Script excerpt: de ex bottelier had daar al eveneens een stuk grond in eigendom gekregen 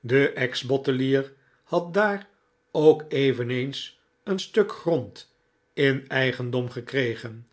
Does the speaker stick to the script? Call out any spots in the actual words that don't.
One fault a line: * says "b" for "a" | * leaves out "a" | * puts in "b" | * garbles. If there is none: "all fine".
* says "ook" for "al"